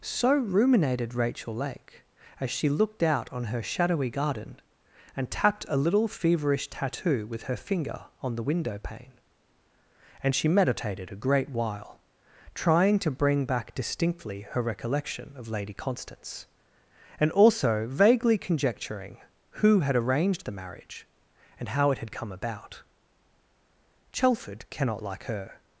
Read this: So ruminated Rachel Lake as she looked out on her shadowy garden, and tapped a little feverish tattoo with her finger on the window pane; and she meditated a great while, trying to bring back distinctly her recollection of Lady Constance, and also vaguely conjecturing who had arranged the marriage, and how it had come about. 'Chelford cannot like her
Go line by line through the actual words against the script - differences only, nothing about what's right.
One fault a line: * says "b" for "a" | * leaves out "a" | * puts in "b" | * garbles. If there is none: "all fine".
all fine